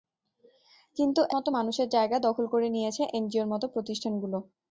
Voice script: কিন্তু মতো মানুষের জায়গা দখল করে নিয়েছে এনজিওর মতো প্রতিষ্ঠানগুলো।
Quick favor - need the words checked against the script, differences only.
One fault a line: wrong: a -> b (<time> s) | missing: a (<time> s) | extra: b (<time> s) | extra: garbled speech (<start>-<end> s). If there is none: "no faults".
no faults